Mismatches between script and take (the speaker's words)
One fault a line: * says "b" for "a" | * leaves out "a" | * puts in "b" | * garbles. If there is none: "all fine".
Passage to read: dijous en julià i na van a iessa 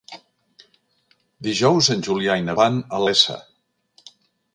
all fine